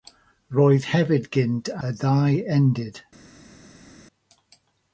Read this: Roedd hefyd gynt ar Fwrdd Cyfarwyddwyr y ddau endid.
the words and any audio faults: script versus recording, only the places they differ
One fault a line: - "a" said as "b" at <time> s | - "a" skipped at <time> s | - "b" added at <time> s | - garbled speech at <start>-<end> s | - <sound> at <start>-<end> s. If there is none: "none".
- "ar Fwrdd Cyfarwyddwyr" skipped at 1.7 s